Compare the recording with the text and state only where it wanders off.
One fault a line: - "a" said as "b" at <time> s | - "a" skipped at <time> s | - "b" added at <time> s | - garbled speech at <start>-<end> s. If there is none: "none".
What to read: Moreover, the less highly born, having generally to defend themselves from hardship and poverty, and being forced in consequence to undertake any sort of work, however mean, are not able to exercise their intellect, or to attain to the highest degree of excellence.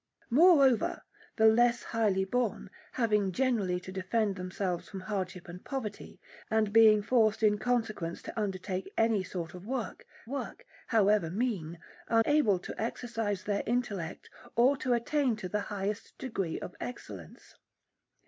- "work" added at 10.3 s
- "not" skipped at 12.2 s